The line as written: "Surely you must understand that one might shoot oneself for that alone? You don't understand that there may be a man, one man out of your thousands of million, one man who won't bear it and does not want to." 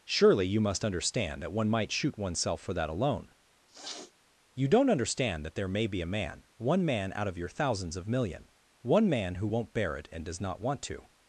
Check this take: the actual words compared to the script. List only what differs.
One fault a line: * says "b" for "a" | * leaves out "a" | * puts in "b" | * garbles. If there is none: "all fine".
all fine